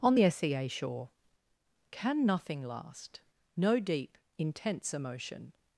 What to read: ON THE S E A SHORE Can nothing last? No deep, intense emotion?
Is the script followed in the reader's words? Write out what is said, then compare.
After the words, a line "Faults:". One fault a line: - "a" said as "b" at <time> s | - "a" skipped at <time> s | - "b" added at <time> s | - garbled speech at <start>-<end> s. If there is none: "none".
ON THE S E A SHORE Can nothing last? No deep, intense emotion?
Faults:
none